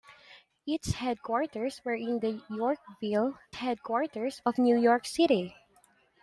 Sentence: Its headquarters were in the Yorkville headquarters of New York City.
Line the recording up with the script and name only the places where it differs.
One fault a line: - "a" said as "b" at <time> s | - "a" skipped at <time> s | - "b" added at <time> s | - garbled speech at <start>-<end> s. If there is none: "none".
none